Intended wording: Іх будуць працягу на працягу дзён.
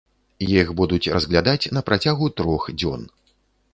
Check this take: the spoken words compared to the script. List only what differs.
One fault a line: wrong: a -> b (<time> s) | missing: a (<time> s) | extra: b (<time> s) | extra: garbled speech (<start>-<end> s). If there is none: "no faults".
wrong: працягу -> разглядаць (1.2 s)
extra: трох (2.4 s)